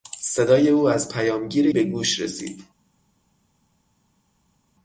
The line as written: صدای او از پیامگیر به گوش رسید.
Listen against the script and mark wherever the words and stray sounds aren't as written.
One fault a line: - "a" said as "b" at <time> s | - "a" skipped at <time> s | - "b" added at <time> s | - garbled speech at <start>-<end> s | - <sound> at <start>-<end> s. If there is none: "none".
none